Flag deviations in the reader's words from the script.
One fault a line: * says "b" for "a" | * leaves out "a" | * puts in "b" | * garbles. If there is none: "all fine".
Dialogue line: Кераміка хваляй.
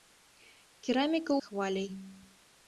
all fine